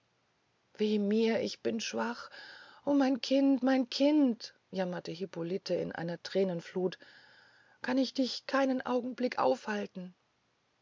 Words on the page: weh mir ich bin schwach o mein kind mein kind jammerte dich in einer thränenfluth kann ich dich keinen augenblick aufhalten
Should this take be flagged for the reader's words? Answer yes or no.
yes